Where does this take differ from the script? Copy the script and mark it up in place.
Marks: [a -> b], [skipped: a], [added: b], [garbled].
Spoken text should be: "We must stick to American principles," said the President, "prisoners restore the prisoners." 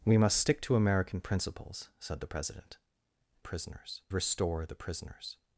"We must stick to American principles," said the President, "prisoners restore the prisoners."